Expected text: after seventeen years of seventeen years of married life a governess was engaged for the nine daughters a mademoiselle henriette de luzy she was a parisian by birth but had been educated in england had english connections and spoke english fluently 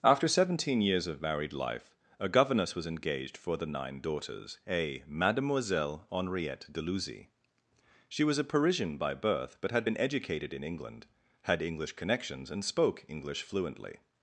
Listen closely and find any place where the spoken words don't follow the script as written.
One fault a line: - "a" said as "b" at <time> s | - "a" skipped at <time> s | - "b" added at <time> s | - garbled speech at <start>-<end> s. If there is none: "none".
- "seventeen years of" skipped at 1.2 s